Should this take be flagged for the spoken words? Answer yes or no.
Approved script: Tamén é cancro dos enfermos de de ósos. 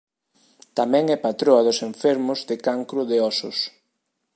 yes